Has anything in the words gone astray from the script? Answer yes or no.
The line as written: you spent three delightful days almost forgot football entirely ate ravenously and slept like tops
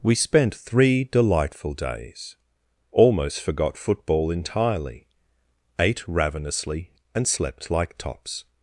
yes